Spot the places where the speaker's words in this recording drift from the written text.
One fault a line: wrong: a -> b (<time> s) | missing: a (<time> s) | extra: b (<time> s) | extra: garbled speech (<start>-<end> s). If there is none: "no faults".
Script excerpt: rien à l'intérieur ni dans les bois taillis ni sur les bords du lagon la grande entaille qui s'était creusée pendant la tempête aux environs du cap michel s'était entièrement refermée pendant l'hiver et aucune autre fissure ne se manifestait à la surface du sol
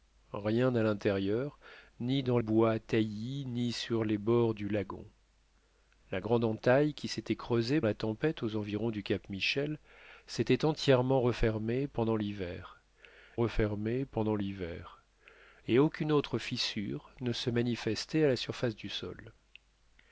missing: les (2.4 s)
missing: pendant (7.8 s)
extra: refermée pendant l'hiver (13.4 s)